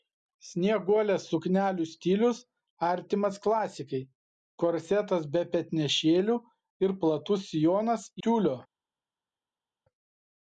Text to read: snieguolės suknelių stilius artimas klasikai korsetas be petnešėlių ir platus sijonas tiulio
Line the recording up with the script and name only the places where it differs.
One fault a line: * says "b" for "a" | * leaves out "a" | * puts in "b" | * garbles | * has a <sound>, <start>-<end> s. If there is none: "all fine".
all fine